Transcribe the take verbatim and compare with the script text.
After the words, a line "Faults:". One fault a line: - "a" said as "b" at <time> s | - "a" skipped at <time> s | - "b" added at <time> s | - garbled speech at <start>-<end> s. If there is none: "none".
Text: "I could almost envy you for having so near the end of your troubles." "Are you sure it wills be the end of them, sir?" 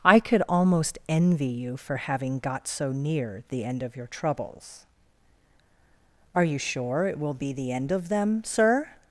"I could almost envy you for having got so near the end of your troubles." "Are you sure it will be the end of them, sir?"
Faults:
- "got" added at 2.4 s
- "wills" said as "will" at 7.2 s